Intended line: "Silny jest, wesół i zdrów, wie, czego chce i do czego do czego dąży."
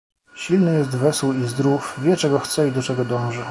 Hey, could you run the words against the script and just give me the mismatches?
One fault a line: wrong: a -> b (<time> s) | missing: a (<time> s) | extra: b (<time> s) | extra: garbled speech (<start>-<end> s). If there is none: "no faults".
missing: do czego (3.0 s)